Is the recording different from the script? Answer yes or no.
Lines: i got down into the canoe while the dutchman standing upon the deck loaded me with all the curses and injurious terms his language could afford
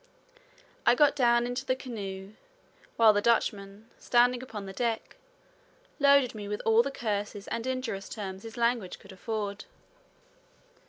no